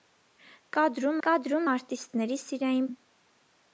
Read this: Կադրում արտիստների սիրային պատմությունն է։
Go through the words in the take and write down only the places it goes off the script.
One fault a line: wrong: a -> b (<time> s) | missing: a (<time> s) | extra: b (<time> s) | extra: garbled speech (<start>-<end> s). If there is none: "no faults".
extra: կադրում (1.3 s)
missing: պատմությունն (2.9 s)